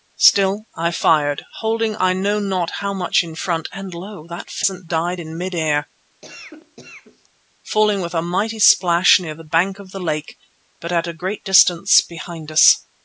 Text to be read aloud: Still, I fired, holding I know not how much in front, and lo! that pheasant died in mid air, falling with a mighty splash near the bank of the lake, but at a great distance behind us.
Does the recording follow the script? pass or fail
pass